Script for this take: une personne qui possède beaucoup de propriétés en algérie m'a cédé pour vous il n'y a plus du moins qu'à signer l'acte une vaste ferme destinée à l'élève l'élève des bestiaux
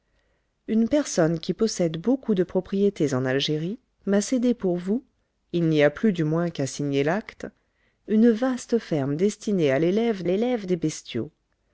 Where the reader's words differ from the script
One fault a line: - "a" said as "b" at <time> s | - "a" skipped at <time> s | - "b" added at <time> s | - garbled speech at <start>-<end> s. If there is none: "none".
none